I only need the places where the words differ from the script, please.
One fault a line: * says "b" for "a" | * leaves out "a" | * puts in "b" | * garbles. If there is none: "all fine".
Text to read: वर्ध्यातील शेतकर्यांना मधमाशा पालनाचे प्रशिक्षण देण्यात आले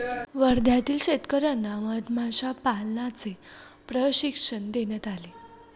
all fine